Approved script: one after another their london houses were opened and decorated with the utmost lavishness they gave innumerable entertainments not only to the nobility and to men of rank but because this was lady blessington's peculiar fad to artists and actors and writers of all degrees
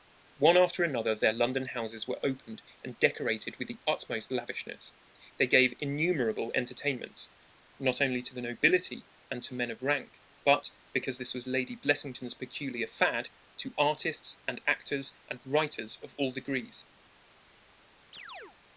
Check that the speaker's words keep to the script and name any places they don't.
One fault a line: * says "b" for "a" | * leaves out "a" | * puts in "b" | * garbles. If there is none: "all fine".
all fine